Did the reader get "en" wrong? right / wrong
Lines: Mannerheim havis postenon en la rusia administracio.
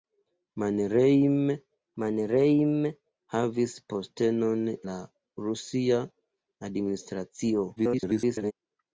wrong